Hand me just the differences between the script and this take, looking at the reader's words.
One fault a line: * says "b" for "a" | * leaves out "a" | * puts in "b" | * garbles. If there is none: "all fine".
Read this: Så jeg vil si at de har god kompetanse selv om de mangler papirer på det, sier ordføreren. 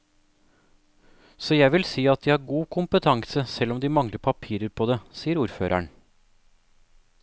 all fine